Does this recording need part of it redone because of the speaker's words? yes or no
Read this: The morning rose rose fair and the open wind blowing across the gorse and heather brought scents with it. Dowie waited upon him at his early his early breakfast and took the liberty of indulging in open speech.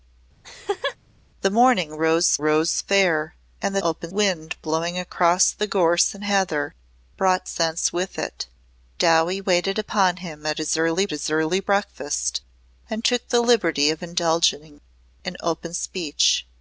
no